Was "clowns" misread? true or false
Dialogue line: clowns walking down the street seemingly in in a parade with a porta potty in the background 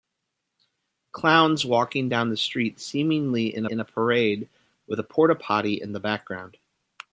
false